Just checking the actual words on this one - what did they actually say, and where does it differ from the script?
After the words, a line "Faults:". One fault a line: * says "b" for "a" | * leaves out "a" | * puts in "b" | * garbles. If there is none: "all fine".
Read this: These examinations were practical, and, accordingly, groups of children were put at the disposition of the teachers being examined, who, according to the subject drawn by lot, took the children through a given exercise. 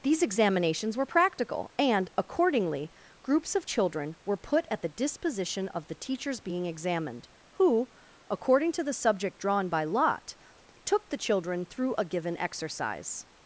These examinations were practical, and, accordingly, groups of children were put at the disposition of the teachers being examined, who, according to the subject drawn by lot, took the children through a given exercise.
Faults:
all fine